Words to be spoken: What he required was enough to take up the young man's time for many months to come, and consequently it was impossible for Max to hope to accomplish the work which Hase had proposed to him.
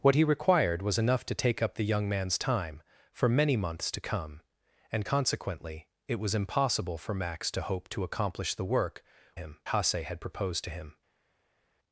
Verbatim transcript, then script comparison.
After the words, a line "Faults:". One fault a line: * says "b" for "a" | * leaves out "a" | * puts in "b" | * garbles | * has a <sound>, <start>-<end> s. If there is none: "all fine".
What he required was enough to take up the young man's time for many months to come, and consequently it was impossible for Max to hope to accomplish the work him Hase had proposed to him.
Faults:
* says "him" for "which"